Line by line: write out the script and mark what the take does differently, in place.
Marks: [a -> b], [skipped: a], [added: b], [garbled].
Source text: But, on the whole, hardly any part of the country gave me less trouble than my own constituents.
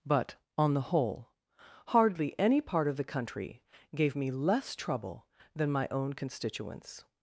But, on the whole, hardly any part of the country gave me less trouble than my own constituents.